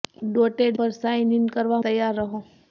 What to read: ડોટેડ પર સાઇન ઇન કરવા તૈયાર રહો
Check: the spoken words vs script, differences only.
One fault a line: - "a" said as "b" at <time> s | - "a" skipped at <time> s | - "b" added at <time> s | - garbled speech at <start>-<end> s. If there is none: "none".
none